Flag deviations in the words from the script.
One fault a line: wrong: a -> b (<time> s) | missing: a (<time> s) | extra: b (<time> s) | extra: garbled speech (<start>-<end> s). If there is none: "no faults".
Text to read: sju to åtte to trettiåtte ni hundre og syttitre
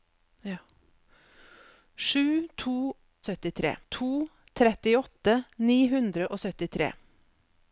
wrong: åtte -> syttitre (3.3 s)